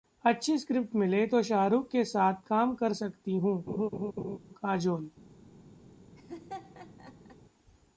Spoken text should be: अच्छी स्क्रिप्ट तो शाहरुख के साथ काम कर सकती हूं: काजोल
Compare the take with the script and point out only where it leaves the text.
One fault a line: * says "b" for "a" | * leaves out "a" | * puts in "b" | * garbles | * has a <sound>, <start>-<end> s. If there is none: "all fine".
* puts in "मिले"
* has a laugh, 3.7-4.4 s
* has a laugh, 6.2-7.4 s